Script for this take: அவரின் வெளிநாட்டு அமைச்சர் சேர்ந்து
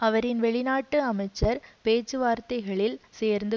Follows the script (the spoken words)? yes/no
no